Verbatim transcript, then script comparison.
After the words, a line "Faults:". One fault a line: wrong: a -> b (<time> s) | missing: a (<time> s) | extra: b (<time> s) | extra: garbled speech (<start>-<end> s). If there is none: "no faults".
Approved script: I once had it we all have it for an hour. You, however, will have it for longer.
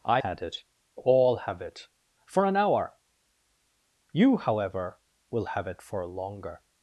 I had it all have it for an hour. You, however, will have it for longer.
Faults:
missing: once (0.2 s)
missing: we (0.6 s)